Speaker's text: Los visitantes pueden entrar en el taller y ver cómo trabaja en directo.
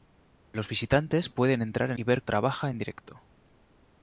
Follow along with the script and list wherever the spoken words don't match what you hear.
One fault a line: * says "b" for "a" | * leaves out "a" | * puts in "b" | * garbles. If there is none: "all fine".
* leaves out "el taller"
* leaves out "cómo"